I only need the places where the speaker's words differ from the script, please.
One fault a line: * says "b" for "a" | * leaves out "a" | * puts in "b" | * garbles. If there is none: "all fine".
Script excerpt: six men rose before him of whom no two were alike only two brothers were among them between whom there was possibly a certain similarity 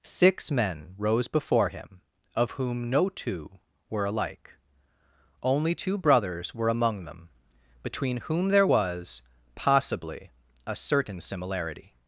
all fine